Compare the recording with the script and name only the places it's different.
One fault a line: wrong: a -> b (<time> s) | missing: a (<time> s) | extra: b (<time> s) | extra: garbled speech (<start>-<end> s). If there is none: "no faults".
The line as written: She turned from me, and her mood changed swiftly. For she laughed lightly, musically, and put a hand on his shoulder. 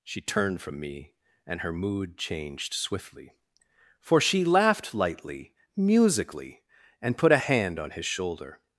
no faults